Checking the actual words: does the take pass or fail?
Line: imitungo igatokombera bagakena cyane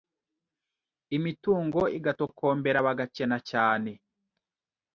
pass